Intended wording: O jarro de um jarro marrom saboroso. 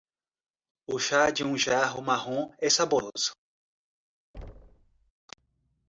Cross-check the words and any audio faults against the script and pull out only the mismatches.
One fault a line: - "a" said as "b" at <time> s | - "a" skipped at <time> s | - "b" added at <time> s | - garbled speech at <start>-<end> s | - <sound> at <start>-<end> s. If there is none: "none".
- "jarro" said as "chá" at 1.0 s
- "é" added at 2.6 s
- thud at 4.3-5.1 s